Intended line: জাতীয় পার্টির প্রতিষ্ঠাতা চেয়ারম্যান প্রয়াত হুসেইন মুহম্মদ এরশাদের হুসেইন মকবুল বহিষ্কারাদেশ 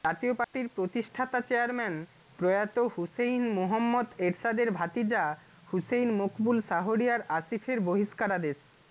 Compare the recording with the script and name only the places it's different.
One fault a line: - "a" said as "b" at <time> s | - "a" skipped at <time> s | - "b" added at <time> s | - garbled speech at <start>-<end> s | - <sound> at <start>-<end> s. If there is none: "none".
- dropout at 0.4-0.5 s
- "ভাতিজা" added at 4.7 s
- "শাহরিয়ার আসিফের" added at 6.6 s